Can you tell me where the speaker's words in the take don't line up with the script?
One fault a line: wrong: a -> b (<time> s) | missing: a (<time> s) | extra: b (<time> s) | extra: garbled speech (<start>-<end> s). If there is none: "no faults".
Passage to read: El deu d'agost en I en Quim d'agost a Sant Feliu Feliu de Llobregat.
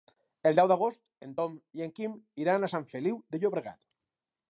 extra: Tom (1.4 s)
wrong: d'agost -> iran (2.4 s)
missing: Feliu (3.2 s)